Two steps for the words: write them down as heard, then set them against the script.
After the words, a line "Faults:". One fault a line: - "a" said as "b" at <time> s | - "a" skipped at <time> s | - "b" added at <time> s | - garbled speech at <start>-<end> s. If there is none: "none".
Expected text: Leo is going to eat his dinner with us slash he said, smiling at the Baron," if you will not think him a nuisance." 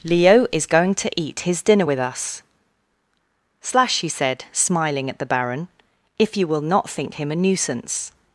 Leo is going to eat his dinner with us slash he said, smiling at the Baron," if you will not think him a nuisance."
Faults:
none